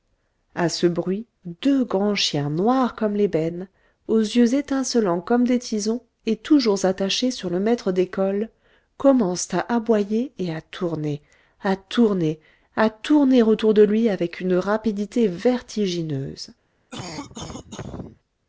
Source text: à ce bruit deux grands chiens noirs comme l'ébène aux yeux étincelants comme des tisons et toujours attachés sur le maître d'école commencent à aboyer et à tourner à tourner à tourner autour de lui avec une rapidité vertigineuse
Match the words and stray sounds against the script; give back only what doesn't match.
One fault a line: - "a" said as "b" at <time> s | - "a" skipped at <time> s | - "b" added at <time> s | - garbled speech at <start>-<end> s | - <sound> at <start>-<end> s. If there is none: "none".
- cough at 16.9-18.2 s